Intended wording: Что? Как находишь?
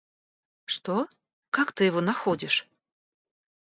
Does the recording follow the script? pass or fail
fail